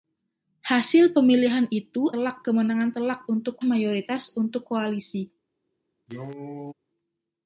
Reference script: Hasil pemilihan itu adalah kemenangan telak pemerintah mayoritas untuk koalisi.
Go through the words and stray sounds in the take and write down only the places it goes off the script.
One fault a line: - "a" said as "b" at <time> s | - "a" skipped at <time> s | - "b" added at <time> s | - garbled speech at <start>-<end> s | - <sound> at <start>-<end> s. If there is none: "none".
- "adalah" said as "telak" at 2.1 s
- "pemerintah" said as "untuk" at 3.3 s
- cough at 6.1-6.7 s